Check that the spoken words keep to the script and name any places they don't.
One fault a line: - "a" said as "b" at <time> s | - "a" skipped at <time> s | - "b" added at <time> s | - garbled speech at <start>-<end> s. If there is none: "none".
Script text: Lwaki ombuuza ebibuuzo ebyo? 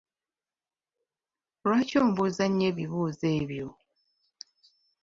- "nnyo" added at 2.5 s